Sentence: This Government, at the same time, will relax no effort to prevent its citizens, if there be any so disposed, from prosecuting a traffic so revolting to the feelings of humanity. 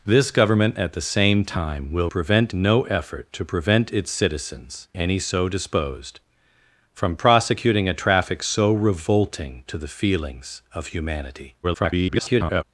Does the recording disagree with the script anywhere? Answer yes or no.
yes